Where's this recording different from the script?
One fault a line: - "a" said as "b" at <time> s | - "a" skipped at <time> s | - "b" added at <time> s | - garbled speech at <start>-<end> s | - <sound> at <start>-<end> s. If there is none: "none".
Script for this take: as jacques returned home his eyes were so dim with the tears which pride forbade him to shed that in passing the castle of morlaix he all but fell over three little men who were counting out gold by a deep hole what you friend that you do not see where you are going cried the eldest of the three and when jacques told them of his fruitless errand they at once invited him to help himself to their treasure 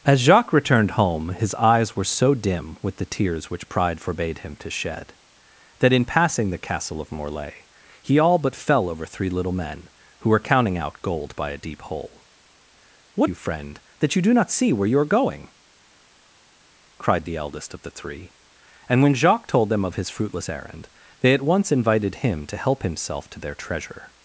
none